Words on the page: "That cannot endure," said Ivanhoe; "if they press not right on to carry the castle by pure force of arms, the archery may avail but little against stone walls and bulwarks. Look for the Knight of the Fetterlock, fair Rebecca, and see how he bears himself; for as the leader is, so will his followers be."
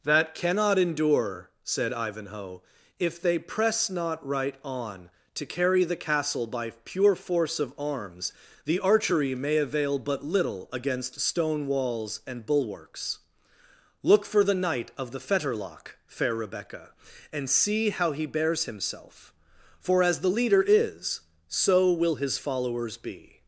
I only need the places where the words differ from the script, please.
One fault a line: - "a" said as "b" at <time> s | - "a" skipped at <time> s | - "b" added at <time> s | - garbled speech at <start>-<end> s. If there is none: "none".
none